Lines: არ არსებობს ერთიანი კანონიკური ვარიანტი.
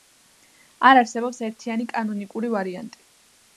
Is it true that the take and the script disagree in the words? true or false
false